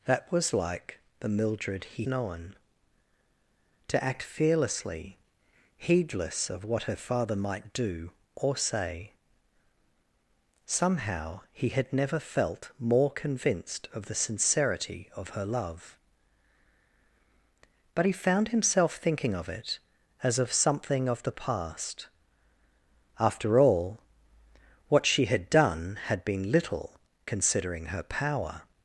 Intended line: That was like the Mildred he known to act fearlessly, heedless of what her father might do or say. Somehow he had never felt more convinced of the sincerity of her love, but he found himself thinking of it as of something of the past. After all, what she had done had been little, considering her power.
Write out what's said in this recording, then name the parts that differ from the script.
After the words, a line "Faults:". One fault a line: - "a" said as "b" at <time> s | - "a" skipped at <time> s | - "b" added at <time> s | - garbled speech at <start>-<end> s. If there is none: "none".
That was like the Mildred he known to act fearlessly, heedless of what her father might do or say. Somehow he had never felt more convinced of the sincerity of her love, but he found himself thinking of it as of something of the past. After all, what she had done had been little, considering her power.
Faults:
none